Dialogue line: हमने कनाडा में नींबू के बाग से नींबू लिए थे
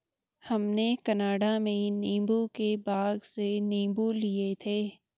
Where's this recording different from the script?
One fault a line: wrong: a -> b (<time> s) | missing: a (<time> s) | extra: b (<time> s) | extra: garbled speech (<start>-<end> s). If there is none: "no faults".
no faults